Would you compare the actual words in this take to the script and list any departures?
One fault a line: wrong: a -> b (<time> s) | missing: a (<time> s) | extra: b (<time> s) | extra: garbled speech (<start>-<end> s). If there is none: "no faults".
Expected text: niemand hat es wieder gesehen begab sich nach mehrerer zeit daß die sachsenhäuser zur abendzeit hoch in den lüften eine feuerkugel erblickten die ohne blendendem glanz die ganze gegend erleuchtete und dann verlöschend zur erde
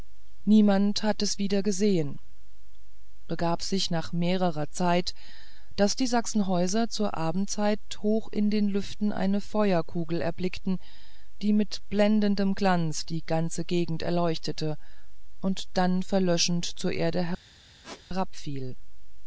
wrong: ohne -> mit (11.5 s)